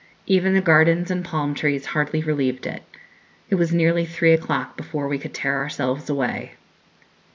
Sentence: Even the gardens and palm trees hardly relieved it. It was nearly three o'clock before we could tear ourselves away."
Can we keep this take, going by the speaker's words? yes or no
yes